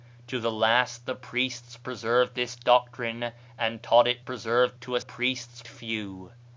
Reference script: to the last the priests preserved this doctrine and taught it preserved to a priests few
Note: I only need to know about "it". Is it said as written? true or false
true